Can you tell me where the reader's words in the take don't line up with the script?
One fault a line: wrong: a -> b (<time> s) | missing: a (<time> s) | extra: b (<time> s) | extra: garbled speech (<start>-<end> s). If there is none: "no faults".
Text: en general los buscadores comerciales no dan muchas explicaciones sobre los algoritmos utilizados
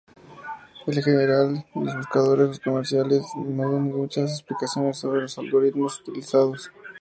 no faults